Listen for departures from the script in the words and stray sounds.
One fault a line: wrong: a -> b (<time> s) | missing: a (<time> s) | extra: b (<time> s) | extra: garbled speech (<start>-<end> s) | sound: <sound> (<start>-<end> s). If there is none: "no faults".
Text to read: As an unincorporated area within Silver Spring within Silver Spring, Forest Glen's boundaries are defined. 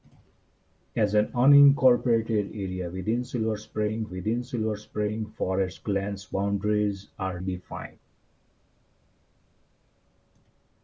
no faults